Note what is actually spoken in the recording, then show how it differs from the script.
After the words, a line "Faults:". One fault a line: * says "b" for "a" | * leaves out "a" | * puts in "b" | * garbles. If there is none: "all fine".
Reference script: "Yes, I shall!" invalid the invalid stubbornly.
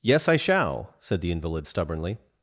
"Yes, I shall!" said the invalid stubbornly.
Faults:
* says "said" for "invalid"